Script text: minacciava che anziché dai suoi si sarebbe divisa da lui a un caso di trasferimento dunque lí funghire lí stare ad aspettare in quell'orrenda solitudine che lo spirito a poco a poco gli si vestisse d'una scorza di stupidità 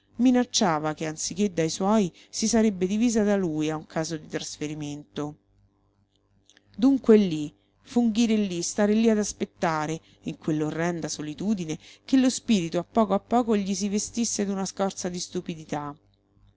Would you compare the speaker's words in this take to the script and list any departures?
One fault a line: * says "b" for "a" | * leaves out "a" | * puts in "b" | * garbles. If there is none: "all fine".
* puts in "lí"